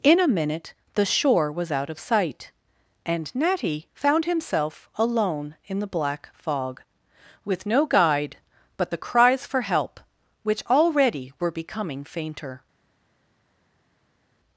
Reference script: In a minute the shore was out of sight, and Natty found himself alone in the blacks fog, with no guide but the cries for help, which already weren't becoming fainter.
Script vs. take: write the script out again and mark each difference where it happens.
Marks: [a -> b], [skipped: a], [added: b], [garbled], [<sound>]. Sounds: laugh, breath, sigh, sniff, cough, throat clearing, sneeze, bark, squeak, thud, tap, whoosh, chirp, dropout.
In a minute the shore was out of sight, and Natty found himself alone in the [blacks -> black] fog, with no guide but the cries for help, which already [weren't -> were] becoming fainter.